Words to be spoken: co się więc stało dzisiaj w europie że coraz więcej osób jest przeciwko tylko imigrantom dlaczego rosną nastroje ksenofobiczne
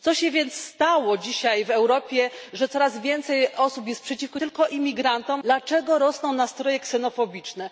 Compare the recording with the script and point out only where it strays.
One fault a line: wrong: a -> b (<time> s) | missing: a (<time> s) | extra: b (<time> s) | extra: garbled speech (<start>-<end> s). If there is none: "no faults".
no faults